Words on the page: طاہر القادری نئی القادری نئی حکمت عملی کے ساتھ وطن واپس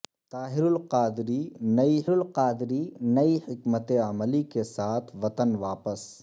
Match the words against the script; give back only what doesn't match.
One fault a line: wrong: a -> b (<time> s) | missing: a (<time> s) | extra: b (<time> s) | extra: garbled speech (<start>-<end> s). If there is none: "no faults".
no faults